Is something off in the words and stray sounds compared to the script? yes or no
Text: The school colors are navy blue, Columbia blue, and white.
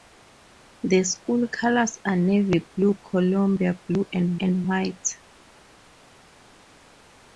yes